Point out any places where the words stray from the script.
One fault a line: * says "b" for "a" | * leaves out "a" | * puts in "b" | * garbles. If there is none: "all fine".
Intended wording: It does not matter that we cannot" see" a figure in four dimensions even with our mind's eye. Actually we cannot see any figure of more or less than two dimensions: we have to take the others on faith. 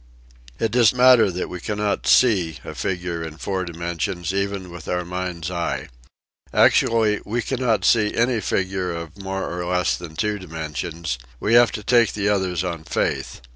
* leaves out "not"